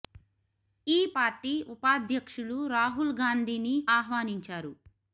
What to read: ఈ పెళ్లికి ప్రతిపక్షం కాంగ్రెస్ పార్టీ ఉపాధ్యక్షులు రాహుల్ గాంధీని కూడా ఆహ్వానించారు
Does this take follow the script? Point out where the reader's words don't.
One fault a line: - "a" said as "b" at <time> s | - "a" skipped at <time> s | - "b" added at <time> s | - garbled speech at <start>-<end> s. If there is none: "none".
- "పెళ్లికి ప్రతిపక్షం కాంగ్రెస్" skipped at 1.0 s
- "కూడా" skipped at 3.8 s